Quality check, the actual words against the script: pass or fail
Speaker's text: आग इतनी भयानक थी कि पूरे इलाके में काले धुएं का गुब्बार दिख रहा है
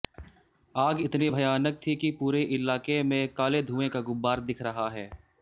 pass